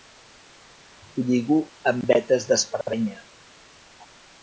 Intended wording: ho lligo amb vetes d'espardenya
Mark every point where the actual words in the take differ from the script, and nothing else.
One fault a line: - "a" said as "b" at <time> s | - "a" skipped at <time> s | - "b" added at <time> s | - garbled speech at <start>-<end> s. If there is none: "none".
none